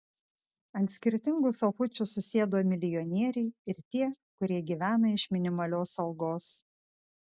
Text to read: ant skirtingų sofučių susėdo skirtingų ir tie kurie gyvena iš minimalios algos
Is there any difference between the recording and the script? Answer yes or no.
yes